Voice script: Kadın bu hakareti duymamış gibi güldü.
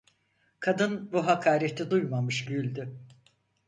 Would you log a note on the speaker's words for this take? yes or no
yes